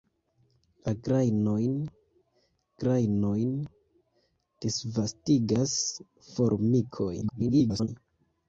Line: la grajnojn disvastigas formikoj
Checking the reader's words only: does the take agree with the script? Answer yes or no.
no